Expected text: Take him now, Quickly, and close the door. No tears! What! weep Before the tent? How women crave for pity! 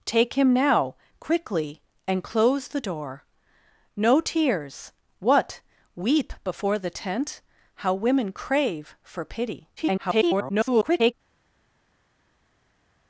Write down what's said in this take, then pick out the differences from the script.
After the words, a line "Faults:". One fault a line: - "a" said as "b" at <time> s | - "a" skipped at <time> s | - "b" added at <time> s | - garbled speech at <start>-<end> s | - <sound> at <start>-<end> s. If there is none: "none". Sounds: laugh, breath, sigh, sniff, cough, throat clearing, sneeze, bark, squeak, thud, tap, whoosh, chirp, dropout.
Take him now, Quickly, and close the door. No tears! What! weep Before the tent? How women crave for pity! [garbled]
Faults:
- garbled speech at 9.8-11.1 s